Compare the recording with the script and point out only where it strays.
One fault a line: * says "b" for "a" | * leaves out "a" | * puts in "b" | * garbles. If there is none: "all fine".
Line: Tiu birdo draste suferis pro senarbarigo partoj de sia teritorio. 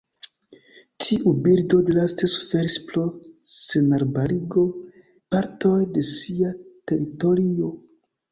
all fine